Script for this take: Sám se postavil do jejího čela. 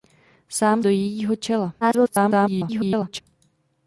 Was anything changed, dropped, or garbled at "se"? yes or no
yes